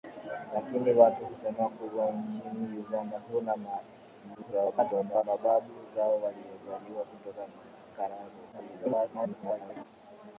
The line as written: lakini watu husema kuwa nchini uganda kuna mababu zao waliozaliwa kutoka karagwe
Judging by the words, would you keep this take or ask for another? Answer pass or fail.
fail